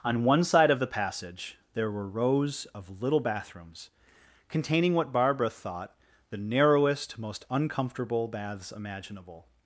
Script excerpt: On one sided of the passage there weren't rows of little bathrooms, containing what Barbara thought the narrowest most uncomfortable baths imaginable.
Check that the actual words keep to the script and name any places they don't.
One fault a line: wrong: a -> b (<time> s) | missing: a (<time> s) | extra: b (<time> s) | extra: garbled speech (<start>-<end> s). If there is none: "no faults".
wrong: sided -> side (0.4 s)
wrong: weren't -> were (1.9 s)